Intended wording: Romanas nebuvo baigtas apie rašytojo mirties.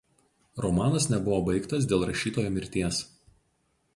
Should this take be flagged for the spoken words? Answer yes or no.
yes